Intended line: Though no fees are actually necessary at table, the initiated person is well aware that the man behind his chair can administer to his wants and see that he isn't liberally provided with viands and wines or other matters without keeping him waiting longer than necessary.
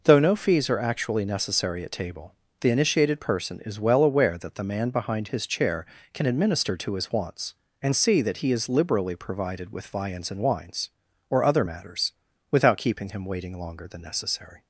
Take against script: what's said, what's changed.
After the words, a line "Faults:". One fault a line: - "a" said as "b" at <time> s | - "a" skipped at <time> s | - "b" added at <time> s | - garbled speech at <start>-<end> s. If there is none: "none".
Though no fees are actually necessary at table, the initiated person is well aware that the man behind his chair can administer to his wants and see that he is liberally provided with viands and wines or other matters without keeping him waiting longer than necessary.
Faults:
- "isn't" said as "is" at 8.5 s